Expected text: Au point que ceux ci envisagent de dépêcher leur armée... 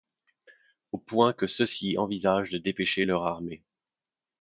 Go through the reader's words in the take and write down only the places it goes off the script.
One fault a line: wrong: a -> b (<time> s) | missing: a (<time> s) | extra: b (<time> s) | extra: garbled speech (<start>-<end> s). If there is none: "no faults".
no faults